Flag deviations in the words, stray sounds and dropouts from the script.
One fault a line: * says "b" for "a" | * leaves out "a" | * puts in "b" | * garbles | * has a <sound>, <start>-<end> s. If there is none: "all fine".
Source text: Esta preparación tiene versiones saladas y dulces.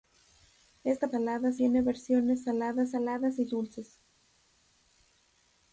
* says "saladas" for "preparación"
* puts in "saladas"